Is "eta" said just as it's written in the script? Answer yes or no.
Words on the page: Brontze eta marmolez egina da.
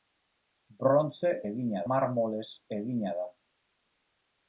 no